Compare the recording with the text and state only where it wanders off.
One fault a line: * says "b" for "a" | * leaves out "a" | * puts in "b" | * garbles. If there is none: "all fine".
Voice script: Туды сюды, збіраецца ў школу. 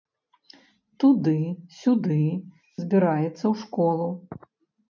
all fine